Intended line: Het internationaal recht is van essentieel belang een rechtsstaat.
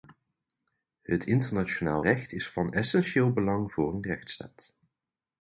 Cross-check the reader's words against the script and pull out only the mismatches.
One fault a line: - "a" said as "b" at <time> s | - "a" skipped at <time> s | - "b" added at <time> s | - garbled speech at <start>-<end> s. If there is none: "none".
- "voor" added at 3.7 s